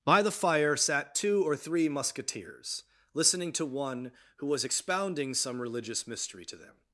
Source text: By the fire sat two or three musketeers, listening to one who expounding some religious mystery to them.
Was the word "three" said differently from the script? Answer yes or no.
no